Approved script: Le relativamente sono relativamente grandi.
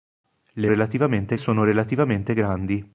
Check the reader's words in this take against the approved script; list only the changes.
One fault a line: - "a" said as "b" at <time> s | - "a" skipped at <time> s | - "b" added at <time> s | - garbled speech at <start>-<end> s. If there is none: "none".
none